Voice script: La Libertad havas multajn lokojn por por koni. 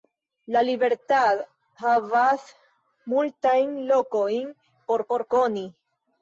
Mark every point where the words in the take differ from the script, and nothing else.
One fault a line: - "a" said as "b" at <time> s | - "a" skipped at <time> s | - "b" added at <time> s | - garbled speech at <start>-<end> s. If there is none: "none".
none